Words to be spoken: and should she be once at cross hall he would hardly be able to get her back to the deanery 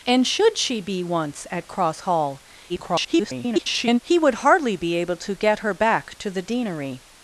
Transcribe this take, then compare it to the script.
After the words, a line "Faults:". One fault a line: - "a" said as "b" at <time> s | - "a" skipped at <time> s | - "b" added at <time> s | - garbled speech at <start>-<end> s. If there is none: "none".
and should she be once at cross hall [garbled] he would hardly be able to get her back to the deanery
Faults:
- garbled speech at 2.7-4.0 s